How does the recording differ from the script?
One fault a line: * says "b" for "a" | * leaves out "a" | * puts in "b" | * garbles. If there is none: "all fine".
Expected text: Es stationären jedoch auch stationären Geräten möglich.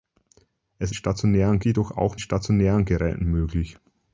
all fine